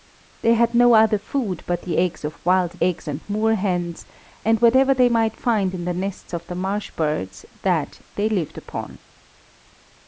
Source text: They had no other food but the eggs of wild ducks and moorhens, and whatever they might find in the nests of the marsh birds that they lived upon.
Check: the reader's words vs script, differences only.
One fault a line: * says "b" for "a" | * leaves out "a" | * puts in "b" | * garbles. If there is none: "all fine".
* says "eggs" for "ducks"